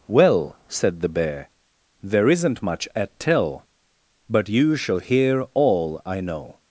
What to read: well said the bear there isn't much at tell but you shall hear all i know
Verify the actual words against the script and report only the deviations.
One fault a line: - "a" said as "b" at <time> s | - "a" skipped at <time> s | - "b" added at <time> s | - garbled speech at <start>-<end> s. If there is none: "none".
none